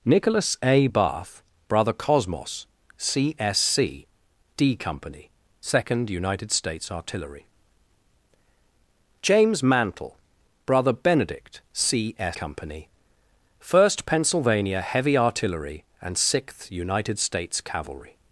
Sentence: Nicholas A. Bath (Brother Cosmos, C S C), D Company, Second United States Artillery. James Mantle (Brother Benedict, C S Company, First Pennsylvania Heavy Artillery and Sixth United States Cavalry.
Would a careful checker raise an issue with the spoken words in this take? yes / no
no